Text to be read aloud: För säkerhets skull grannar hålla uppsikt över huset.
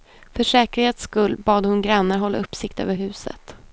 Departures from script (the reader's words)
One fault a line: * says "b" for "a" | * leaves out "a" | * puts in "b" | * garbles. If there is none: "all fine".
* puts in "bad hon"